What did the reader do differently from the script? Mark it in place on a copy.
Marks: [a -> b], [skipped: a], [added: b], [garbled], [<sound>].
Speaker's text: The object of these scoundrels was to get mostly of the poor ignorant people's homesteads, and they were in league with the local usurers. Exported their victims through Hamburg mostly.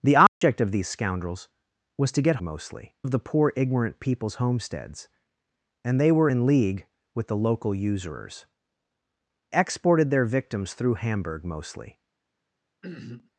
The object [dropout] of these scoundrels was to get mostly of the poor ignorant people's homesteads, and they were in league with the local usurers. Exported their victims through Hamburg mostly. [throat clearing]